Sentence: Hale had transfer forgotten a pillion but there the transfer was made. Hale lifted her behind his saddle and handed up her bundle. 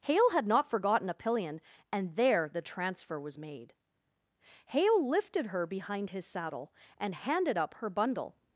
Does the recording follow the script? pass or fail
fail